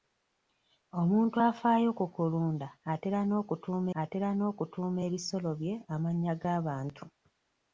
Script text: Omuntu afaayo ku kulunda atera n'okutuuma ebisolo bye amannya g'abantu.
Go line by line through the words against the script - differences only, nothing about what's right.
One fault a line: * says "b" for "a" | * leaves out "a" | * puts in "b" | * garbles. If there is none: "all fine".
* puts in "atera n'okutuuma"